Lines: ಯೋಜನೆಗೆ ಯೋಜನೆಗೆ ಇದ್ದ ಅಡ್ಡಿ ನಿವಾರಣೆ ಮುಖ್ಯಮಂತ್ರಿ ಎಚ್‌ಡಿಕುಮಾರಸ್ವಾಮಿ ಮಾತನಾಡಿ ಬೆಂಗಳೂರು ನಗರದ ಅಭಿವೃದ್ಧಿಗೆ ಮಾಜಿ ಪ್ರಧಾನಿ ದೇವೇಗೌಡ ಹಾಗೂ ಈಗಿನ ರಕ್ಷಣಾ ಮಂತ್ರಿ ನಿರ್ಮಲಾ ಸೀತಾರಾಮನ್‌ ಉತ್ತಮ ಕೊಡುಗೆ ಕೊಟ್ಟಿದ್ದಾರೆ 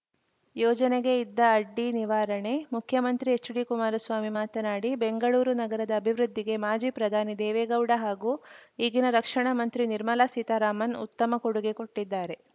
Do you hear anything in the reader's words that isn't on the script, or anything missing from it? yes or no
yes